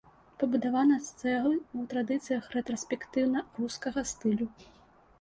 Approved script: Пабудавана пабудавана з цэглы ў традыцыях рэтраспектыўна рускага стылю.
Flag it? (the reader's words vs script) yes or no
yes